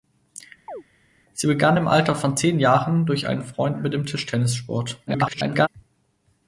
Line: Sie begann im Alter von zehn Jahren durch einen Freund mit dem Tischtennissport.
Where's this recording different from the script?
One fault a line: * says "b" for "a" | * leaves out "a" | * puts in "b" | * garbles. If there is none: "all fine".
* garbles